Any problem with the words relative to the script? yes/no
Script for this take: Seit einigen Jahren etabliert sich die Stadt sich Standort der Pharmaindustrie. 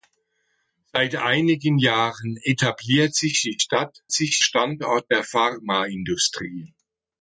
no